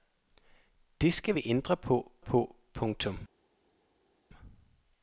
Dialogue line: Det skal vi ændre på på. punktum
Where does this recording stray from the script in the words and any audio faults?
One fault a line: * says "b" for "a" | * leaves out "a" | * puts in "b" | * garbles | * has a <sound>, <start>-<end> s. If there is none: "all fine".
all fine